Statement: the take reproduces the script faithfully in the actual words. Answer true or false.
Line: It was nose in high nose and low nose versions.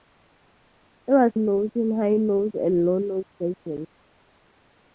true